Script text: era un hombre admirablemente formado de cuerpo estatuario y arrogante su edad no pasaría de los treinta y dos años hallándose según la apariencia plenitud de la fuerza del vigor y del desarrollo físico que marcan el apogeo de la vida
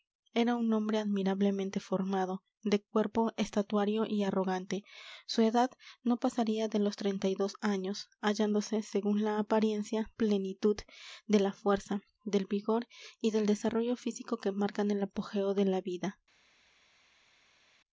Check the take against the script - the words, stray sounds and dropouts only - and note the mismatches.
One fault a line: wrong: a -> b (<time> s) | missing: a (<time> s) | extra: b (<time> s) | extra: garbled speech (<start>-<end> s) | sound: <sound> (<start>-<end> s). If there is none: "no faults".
no faults